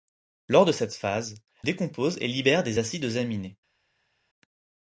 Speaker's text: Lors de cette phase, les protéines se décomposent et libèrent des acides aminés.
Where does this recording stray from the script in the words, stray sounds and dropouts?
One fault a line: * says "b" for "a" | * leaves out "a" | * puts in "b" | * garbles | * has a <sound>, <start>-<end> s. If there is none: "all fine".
* leaves out "les protéines se"